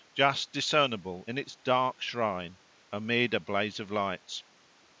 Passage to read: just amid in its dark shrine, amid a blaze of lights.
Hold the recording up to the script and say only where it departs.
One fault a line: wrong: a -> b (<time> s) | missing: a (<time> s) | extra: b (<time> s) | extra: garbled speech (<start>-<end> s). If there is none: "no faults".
wrong: amid -> discernible (0.5 s)